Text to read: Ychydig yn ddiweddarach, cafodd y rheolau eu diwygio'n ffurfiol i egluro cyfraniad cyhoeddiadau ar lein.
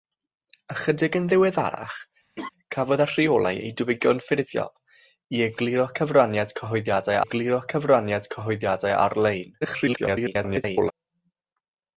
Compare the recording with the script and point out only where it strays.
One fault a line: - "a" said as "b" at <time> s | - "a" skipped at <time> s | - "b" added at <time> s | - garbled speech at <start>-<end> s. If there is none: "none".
- "egluro cyfraniad cyhoeddiadau" added at 7.2 s
- garbled speech at 9.6-10.9 s